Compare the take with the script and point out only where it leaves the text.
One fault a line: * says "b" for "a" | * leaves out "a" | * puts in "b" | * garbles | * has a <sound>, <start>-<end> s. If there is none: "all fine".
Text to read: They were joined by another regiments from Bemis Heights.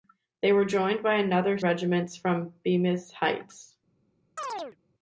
* has a chirp, 4.4-4.8 s